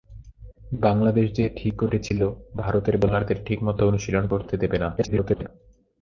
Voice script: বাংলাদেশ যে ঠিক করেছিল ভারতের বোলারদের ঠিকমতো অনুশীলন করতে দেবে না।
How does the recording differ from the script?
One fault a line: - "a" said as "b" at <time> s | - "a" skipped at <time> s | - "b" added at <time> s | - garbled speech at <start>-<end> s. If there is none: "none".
- garbled speech at 5.0-5.5 s